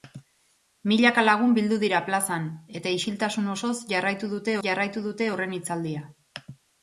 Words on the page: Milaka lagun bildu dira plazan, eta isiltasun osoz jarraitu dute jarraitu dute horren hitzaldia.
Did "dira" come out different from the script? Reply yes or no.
no